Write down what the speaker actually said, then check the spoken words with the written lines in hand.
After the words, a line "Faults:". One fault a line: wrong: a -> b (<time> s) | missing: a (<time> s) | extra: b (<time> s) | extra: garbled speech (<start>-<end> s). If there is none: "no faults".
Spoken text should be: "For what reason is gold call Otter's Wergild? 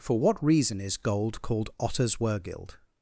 "For what reason is gold called Otter's Wergild?
Faults:
wrong: call -> called (1.4 s)